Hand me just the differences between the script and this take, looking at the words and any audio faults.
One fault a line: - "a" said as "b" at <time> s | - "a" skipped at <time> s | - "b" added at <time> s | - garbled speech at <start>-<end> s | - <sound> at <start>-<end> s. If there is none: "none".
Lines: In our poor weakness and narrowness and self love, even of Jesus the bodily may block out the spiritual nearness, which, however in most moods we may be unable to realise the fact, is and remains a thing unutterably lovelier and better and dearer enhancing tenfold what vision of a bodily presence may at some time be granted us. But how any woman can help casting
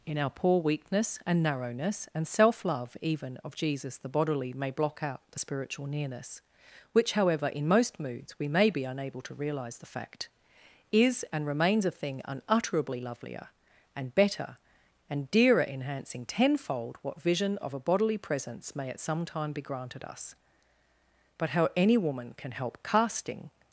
none